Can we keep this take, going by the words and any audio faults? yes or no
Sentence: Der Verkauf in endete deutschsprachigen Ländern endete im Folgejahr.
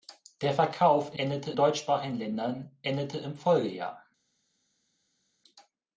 yes